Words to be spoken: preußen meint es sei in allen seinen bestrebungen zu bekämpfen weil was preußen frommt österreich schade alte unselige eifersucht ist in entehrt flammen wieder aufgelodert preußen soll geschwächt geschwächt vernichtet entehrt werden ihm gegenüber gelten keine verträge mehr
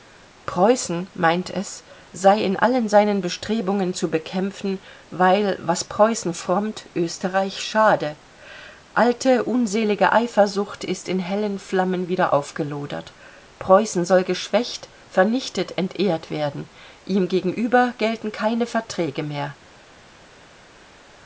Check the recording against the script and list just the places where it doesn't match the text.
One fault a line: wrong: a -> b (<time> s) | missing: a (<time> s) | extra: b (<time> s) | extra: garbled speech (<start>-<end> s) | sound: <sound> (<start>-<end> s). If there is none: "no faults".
wrong: entehrt -> hellen (11.2 s)
missing: geschwächt (14.9 s)